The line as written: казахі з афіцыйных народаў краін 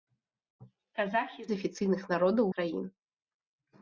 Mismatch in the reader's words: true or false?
false